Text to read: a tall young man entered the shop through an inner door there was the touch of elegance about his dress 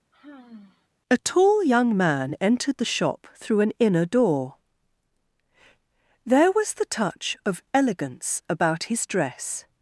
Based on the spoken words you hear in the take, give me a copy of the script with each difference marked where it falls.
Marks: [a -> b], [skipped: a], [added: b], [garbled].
a tall young man entered the shop through an inner door there was the touch of elegance about his dress